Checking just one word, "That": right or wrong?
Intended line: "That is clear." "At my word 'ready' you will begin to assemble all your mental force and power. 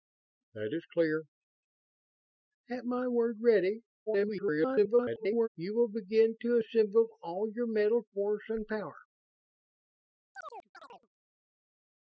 right